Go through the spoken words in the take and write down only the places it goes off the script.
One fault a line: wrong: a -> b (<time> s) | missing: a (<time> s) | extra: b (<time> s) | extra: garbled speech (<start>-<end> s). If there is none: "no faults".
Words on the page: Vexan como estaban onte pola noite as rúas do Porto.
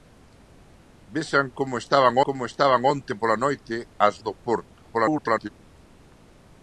extra: como estaban (2.3 s)
missing: rúas (4.2 s)
extra: garbled speech (4.9-5.5 s)